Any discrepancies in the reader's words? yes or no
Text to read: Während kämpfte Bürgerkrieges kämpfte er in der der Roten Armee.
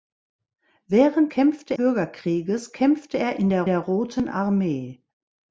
no